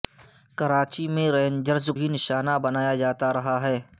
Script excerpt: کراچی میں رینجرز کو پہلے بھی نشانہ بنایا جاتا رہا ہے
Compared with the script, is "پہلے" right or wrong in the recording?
wrong